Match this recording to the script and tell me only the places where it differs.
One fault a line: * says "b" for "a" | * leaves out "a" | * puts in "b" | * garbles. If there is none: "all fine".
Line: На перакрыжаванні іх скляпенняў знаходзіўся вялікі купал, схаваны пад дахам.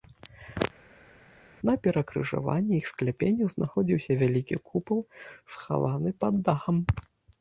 all fine